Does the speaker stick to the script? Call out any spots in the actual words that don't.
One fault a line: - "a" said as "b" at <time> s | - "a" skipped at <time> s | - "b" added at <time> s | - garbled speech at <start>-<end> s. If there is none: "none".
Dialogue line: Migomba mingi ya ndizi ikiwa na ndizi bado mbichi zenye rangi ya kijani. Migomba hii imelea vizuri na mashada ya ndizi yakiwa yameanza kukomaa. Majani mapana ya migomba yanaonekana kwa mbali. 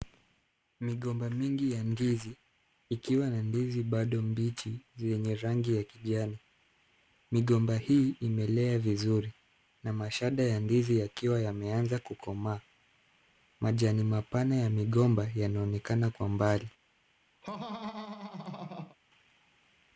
none